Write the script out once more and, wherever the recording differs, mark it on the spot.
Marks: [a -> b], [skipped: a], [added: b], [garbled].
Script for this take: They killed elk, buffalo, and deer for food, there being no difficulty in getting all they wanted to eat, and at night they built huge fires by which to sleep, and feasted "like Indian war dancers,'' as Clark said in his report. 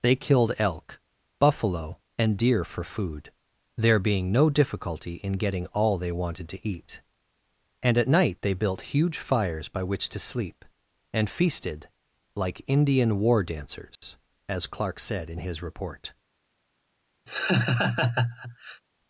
They killed elk, buffalo, and deer for food, there being no difficulty in getting all they wanted to eat, and at night they built huge fires by which to sleep, and feasted "like Indian war dancers,'' as Clark said in his report.